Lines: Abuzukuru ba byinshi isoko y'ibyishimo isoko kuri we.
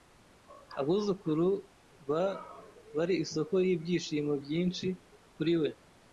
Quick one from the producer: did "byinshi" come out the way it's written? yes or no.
no